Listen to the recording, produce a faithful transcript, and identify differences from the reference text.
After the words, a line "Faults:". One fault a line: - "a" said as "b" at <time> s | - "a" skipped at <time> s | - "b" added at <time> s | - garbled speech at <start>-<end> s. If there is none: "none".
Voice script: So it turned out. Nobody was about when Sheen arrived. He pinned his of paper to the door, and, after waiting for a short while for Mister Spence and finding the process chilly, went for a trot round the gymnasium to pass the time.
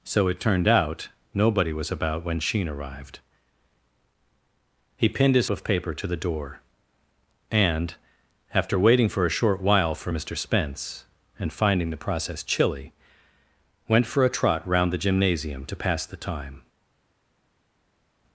So it turned out. Nobody was about when Sheen arrived. He pinned his of paper to the door, and, after waiting for a short while for Mister Spence and finding the process chilly, went for a trot round the gymnasium to pass the time.
Faults:
none